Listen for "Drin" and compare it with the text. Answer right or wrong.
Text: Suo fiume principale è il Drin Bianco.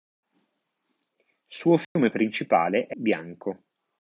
wrong